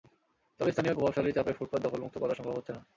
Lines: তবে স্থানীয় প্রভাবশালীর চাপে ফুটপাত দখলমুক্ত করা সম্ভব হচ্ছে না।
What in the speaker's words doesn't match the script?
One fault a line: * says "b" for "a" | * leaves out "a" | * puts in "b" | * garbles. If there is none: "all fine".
all fine